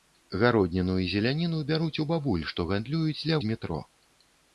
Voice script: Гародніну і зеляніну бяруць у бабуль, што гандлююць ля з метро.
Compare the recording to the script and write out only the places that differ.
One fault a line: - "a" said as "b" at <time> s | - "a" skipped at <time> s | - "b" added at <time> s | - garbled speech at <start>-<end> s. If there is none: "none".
none